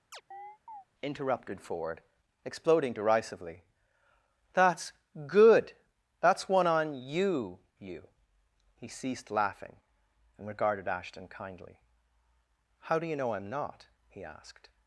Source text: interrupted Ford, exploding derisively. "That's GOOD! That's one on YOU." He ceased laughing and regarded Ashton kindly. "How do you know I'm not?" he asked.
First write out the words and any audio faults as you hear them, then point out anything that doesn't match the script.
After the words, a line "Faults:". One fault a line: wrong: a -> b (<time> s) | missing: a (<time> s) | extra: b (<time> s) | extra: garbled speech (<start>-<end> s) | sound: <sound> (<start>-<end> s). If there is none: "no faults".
interrupted Ford, exploding derisively. "That's GOOD! That's one on YOU." you He ceased laughing and regarded Ashton kindly. "How do you know I'm not?" he asked.
Faults:
sound: chirp (0.1-0.8 s)
extra: you (7.8 s)